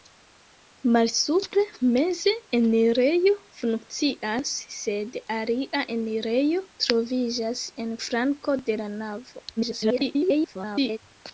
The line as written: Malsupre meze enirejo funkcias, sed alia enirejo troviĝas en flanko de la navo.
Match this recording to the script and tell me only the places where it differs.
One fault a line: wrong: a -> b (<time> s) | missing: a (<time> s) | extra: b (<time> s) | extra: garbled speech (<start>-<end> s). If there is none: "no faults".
extra: garbled speech (9.6-11.0 s)